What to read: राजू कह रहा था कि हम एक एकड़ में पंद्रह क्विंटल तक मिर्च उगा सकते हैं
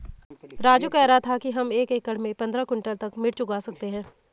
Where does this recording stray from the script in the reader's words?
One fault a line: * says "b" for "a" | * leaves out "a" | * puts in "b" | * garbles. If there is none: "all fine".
all fine